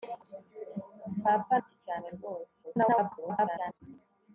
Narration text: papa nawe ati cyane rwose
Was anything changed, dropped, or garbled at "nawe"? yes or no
yes